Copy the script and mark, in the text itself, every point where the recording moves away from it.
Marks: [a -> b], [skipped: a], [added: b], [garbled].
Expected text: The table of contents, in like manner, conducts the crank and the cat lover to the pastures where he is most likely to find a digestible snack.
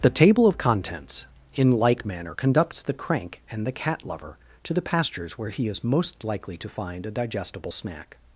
The table of contents, in like manner, conducts the crank and the cat lover to the pastures where he is most likely to find a digestible snack.